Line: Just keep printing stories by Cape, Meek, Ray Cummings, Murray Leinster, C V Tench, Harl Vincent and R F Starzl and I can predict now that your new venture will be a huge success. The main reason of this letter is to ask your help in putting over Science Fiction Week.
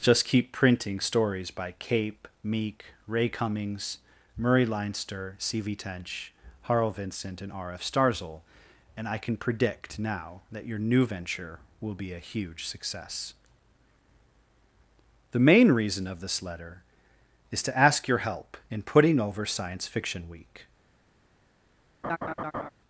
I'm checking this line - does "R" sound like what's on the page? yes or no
yes